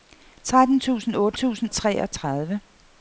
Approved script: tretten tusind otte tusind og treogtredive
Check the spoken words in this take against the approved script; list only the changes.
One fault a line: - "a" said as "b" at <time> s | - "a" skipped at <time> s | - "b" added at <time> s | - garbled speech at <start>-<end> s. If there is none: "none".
none